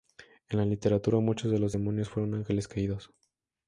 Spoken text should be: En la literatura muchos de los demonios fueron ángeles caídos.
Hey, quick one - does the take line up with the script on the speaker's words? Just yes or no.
yes